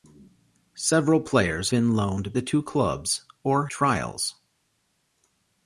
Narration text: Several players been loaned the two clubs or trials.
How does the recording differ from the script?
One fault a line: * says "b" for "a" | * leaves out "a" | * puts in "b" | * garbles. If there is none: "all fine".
all fine